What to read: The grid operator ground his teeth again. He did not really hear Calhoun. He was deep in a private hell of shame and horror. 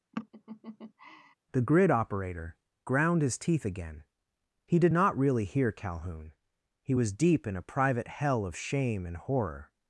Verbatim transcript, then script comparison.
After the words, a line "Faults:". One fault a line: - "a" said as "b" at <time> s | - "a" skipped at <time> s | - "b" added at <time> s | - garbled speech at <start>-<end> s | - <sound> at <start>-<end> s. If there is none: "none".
The grid operator ground his teeth again. He did not really hear Calhoun. He was deep in a private hell of shame and horror.
Faults:
- laugh at 0.1-1.3 s